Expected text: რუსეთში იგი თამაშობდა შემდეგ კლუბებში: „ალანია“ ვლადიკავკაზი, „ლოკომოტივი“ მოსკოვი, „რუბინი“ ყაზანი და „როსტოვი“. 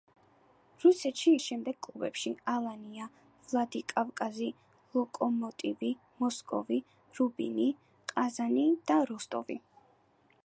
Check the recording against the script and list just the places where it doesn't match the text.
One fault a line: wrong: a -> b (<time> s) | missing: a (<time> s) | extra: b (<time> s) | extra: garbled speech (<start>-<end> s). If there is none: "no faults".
missing: იგი თამაშობდა (1.3 s)